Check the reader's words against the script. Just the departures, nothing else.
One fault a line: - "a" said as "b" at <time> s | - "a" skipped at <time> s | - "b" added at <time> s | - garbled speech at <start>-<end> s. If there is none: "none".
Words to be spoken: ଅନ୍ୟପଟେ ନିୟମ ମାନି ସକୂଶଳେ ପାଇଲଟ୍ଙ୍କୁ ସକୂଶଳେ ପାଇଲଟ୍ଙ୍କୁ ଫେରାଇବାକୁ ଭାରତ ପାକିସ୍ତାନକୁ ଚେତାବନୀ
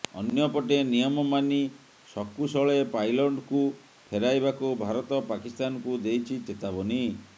- "ସକୂଶଳେ ପାଇଲଟ୍ଙ୍କୁ" skipped at 3.6 s
- "ଦେଇଛି" added at 6.1 s